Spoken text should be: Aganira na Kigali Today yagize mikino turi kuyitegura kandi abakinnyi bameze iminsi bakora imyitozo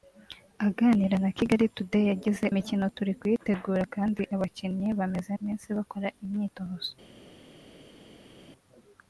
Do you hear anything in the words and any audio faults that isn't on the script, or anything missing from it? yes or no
no